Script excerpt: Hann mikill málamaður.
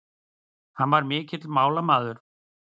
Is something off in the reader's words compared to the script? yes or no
yes